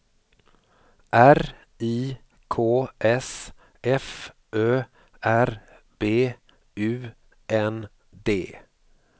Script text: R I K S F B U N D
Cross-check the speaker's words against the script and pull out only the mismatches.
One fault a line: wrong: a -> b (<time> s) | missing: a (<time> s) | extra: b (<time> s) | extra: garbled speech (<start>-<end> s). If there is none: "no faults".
extra: Ö R (4.5 s)